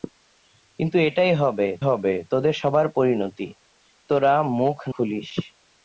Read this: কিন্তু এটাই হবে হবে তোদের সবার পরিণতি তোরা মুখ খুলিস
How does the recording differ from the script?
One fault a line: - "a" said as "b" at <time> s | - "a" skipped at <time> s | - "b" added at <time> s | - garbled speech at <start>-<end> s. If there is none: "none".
none